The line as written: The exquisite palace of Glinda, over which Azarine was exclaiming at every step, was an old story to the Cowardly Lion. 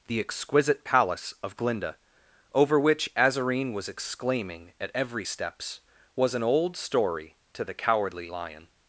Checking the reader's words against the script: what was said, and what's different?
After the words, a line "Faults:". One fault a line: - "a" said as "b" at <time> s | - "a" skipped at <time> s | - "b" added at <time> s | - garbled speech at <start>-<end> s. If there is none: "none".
The exquisite palace of Glinda, over which Azarine was exclaiming at every steps, was an old story to the Cowardly Lion.
Faults:
- "step" said as "steps" at 5.2 s